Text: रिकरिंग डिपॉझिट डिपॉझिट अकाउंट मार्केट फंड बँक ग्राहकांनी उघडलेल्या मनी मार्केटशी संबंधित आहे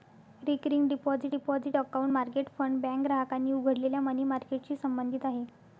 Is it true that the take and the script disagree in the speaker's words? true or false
false